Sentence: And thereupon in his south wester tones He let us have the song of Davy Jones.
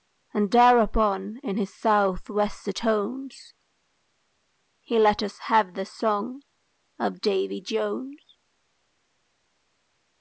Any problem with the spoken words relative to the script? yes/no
no